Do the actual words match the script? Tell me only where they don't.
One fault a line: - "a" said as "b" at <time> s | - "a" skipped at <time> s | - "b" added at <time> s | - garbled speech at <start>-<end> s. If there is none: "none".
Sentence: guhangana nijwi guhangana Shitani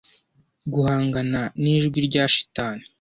- "guhangana" said as "rya" at 2.1 s